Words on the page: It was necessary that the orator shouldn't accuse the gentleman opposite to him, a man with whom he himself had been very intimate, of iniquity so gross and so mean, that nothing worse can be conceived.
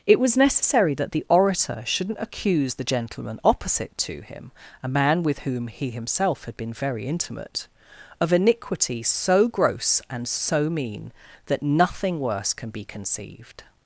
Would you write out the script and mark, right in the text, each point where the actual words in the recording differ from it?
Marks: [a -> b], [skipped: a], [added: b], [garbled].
It was necessary that the orator shouldn't accuse the gentleman opposite to him, a man with whom he himself had been very intimate, of iniquity so gross and so mean, that nothing worse can be conceived.